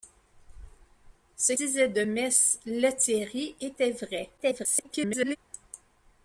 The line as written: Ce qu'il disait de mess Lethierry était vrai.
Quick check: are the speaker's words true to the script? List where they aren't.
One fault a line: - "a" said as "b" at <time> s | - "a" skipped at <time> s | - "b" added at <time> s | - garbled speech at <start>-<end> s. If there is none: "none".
- "qu'il" skipped at 1.5 s
- garbled speech at 4.4-5.4 s